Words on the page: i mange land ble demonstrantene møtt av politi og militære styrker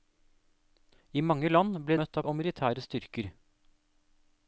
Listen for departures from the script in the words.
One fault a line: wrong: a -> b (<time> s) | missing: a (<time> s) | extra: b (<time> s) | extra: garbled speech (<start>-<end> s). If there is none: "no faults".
missing: demonstrantene (2.0 s)
missing: politi (2.3 s)